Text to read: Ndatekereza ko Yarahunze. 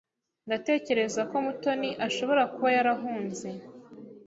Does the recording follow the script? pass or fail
fail